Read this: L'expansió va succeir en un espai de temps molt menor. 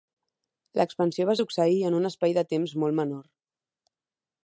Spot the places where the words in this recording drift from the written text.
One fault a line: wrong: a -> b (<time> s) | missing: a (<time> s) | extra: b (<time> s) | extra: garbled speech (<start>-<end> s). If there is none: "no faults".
no faults